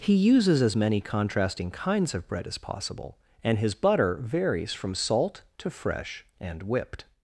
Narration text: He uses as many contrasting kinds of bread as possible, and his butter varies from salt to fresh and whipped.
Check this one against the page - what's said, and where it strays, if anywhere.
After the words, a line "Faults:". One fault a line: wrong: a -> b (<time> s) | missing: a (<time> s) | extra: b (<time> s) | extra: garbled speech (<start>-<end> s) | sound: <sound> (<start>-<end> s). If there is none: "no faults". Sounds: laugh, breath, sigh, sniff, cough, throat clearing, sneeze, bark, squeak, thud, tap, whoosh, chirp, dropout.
He uses as many contrasting kinds of bread as possible, and his butter varies from salt to fresh and whipped.
Faults:
no faults